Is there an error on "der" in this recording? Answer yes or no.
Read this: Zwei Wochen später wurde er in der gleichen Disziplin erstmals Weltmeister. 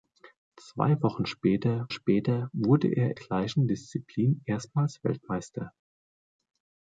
yes